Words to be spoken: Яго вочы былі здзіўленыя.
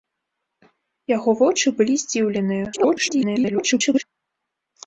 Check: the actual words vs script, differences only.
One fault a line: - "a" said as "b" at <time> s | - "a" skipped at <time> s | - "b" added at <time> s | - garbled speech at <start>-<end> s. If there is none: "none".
- garbled speech at 2.7-4.0 s